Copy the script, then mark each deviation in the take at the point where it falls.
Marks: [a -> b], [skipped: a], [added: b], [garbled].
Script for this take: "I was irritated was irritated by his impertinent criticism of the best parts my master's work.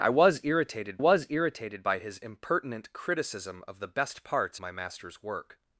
"I was irritated was irritated by his impertinent criticism of the best parts my master's work.